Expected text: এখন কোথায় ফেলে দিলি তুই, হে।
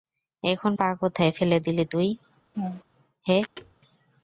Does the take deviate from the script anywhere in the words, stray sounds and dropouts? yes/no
yes